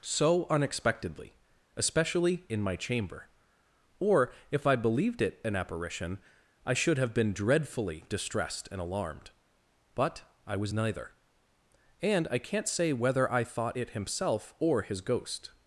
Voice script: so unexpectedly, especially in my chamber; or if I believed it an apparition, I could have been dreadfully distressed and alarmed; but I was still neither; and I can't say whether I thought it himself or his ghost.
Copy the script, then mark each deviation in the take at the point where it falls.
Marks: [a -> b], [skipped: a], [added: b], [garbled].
so unexpectedly, especially in my chamber; or if I believed it an apparition, I [could -> should] have been dreadfully distressed and alarmed; but I was [skipped: still] neither; and I can't say whether I thought it himself or his ghost.